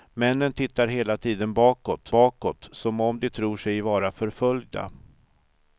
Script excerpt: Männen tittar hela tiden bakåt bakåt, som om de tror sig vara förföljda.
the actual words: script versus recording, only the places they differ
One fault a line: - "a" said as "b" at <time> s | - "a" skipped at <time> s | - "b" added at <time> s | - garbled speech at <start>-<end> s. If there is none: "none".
none